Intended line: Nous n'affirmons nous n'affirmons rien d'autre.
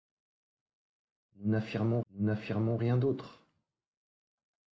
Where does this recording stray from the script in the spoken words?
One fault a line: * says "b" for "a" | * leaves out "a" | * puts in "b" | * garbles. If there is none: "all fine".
all fine